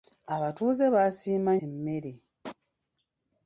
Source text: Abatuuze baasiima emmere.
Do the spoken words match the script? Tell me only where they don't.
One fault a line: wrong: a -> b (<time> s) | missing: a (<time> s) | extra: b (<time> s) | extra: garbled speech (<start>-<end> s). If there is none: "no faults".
no faults